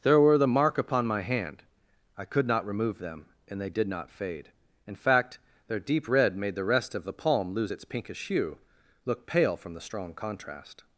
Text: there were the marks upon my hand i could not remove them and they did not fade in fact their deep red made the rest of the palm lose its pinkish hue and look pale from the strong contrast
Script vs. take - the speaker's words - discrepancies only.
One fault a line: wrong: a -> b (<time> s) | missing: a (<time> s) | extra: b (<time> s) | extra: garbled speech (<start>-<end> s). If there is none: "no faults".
wrong: marks -> mark (0.5 s)
missing: and (8.6 s)